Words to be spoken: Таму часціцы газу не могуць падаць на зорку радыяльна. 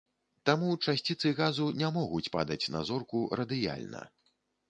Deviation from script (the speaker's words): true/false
false